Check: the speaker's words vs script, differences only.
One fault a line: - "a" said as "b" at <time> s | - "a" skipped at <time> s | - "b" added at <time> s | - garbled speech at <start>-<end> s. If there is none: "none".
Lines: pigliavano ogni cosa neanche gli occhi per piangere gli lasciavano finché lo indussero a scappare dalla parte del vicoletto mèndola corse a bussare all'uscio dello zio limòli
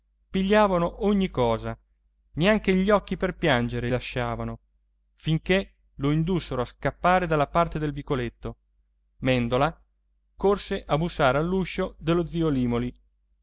- "gli" skipped at 3.9 s